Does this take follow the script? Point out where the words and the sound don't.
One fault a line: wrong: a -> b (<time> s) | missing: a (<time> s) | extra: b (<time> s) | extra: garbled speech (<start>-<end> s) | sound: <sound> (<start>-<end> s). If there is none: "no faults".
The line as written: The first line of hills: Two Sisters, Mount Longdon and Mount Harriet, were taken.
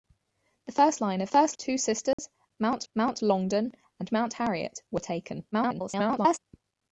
wrong: hills -> first (1.3 s)
sound: dropout (2.1-2.2 s)
extra: Mount (2.9 s)
extra: garbled speech (5.5-6.4 s)